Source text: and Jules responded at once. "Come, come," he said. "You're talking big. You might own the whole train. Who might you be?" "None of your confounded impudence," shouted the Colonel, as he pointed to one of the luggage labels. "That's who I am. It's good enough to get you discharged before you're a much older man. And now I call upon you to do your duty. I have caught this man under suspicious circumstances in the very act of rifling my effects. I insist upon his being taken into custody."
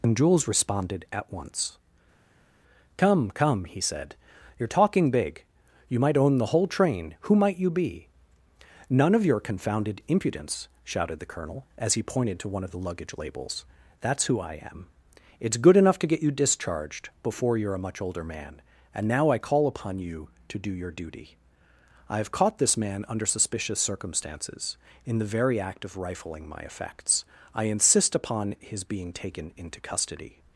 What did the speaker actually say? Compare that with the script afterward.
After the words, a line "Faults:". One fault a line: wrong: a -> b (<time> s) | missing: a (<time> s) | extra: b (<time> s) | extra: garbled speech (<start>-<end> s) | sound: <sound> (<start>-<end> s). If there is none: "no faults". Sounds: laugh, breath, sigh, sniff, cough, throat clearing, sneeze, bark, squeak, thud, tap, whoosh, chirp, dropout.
and Jules responded at once. "Come, come," he said. "You're talking big. You might own the whole train. Who might you be?" "None of your confounded impudence," shouted the Colonel, as he pointed to one of the luggage labels. "That's who I am. It's good enough to get you discharged before you're a much older man. And now I call upon you to do your duty. I have caught this man under suspicious circumstances in the very act of rifling my effects. I insist upon his being taken into custody."
Faults:
no faults